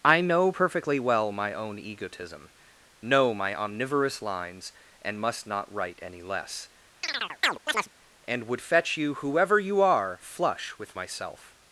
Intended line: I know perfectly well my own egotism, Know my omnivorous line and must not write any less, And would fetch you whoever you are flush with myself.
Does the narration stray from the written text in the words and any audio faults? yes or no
yes